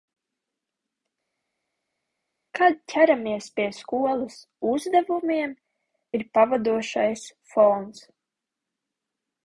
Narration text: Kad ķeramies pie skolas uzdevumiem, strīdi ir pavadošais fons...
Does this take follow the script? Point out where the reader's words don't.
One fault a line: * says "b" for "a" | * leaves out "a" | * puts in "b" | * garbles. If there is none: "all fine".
* leaves out "strīdi"